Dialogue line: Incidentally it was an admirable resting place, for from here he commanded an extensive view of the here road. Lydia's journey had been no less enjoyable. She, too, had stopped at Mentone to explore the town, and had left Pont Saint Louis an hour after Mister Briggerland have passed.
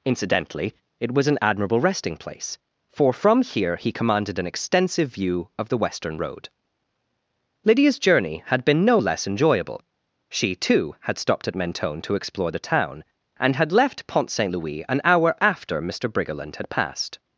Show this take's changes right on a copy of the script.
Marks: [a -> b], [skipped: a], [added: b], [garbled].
Incidentally it was an admirable resting place, for from here he commanded an extensive view of the [here -> western] road. Lydia's journey had been no less enjoyable. She, too, had stopped at Mentone to explore the town, and had left Pont Saint Louis an hour after Mister Briggerland [have -> had] passed.